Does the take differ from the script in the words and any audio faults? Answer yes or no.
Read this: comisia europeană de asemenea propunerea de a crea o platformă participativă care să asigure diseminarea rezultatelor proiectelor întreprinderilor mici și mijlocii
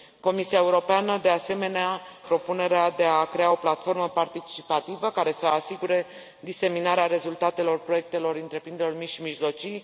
no